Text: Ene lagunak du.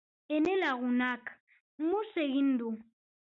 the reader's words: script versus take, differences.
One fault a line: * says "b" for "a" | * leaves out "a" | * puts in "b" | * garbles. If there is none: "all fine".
* puts in "mus egin"